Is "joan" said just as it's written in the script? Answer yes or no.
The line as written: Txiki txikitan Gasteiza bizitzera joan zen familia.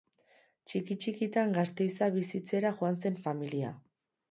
yes